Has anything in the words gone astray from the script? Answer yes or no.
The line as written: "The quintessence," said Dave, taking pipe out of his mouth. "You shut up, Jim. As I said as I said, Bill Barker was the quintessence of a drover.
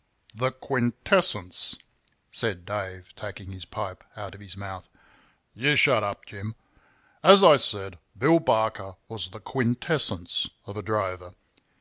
yes